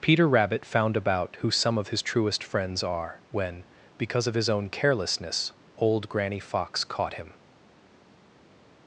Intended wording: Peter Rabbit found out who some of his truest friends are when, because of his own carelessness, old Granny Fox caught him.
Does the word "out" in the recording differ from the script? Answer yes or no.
yes